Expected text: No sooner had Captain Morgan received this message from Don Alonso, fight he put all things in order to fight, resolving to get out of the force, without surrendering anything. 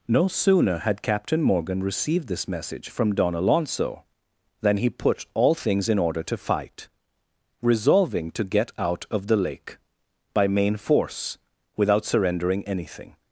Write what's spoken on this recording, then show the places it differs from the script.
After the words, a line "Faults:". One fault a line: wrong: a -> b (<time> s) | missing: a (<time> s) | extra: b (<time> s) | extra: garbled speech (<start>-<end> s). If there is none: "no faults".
No sooner had Captain Morgan received this message from Don Alonso, than he put all things in order to fight, resolving to get out of the lake by main force, without surrendering anything.
Faults:
wrong: fight -> than (4.6 s)
extra: lake by main (9.4 s)